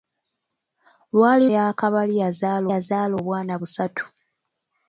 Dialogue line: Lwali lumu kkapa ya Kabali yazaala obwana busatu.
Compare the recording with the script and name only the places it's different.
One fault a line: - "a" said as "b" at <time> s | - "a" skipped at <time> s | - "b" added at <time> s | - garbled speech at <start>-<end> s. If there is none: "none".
- "lumu kkapa" skipped at 1.4 s
- "yazaala" added at 2.7 s